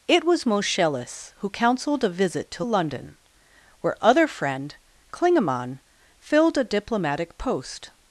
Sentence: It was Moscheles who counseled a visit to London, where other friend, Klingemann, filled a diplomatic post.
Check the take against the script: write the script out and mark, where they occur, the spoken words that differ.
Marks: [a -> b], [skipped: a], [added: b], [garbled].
It was Moscheles who counseled a visit to London, where other friend, Klingemann, filled a diplomatic post.